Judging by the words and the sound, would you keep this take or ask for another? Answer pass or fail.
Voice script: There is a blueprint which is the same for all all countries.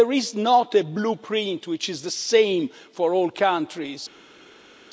fail